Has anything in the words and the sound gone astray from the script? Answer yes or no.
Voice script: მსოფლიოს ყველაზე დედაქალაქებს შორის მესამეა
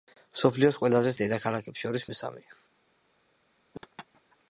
yes